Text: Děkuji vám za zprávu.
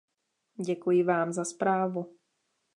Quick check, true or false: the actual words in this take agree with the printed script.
true